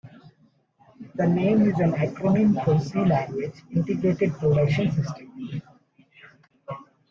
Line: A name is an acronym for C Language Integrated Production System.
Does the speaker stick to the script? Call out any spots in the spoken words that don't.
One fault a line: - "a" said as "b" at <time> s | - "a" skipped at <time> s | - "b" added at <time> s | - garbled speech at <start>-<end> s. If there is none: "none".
- "A" said as "The" at 1.1 s